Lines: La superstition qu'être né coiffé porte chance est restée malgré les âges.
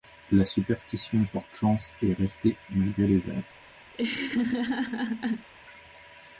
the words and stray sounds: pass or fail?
fail